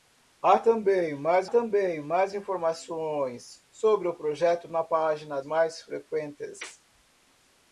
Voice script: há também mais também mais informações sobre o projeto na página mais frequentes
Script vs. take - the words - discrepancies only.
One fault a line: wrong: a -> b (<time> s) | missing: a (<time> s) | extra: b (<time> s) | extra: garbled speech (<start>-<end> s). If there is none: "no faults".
no faults